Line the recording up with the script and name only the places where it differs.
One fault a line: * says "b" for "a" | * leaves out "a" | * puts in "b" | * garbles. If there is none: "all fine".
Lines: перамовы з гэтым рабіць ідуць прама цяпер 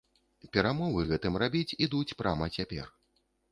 all fine